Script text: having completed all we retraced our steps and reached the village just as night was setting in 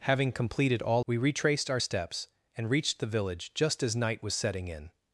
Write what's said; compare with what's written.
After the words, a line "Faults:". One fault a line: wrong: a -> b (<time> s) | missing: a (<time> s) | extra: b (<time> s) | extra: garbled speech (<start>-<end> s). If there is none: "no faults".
having completed all we retraced our steps and reached the village just as night was setting in
Faults:
no faults